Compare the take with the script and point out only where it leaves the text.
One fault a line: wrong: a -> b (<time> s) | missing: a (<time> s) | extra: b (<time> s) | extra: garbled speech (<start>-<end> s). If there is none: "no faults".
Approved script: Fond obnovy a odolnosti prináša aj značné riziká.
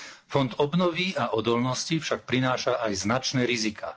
extra: však (2.0 s)